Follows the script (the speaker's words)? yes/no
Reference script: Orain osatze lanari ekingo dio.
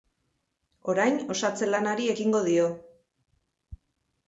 yes